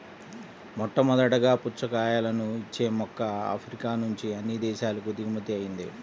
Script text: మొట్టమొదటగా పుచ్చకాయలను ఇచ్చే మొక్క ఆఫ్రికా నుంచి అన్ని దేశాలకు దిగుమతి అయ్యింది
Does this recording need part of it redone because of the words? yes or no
no